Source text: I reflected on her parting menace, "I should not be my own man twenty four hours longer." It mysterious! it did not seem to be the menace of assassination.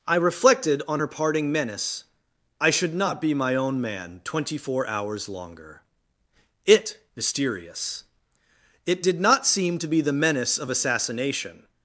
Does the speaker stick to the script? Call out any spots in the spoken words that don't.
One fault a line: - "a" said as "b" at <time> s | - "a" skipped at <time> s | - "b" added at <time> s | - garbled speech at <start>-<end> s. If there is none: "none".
none